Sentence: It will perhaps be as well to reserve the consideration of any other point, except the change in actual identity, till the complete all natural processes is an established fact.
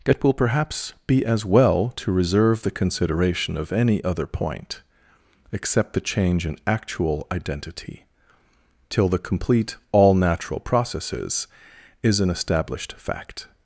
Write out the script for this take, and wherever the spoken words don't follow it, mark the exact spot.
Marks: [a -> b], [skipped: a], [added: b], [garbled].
It will perhaps be as well to reserve the consideration of any other point, except the change in actual identity, till the complete all natural processes is an established fact.